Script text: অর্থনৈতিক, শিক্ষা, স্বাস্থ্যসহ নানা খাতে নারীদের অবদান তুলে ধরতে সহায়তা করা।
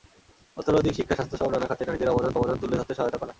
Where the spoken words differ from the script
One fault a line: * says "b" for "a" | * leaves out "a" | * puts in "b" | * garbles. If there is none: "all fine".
* puts in "অবদান"